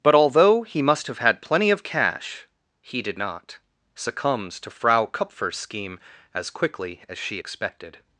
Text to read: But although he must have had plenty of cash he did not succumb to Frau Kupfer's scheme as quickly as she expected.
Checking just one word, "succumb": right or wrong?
wrong